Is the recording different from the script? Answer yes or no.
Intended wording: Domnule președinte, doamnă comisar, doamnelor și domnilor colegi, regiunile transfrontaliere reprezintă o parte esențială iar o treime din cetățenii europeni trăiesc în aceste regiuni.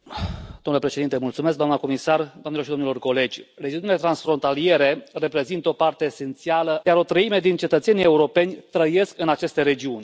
no